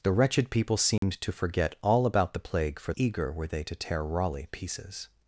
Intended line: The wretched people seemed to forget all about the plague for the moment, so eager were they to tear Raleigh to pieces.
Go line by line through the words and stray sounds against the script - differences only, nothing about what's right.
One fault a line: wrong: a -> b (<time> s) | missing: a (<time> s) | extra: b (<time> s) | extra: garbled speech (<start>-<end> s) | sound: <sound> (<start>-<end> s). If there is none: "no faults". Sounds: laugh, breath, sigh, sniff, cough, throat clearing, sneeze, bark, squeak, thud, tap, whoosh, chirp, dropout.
sound: dropout (1.0-1.0 s)
missing: the moment so (2.9 s)
missing: to (4.5 s)